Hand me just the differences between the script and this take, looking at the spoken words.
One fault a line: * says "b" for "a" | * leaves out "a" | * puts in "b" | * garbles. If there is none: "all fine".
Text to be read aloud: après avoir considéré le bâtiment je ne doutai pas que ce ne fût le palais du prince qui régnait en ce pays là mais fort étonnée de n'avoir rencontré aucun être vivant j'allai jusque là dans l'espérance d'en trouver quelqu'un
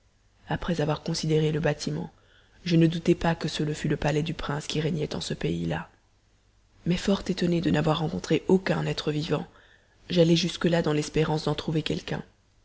all fine